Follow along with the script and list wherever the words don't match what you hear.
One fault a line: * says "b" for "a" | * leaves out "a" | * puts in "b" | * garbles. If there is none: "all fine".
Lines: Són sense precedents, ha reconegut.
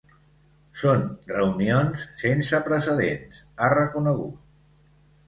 * puts in "reunions"